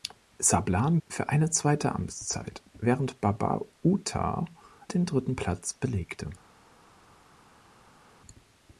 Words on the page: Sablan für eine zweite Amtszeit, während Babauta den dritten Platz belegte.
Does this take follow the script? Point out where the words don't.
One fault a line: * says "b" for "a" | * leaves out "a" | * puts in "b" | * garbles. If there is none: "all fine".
all fine